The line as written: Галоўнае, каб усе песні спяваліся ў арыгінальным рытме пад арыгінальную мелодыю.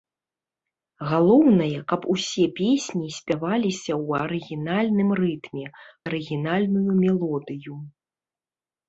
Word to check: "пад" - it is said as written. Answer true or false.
false